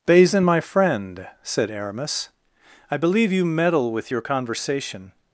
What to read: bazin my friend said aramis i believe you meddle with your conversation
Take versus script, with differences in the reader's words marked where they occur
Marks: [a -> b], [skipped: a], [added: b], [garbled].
bazin my friend said aramis i believe you meddle with your conversation